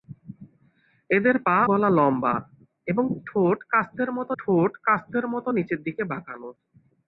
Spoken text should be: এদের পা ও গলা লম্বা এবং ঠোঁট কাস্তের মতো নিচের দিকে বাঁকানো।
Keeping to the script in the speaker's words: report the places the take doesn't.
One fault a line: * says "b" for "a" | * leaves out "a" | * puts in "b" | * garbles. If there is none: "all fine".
* leaves out "ও"
* puts in "ঠোঁট কাস্তের মতো"